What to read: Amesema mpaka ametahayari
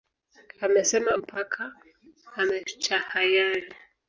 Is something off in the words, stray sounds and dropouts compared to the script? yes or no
no